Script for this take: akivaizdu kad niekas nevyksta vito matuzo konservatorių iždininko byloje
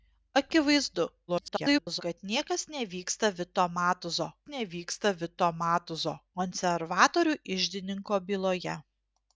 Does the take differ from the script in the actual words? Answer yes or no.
yes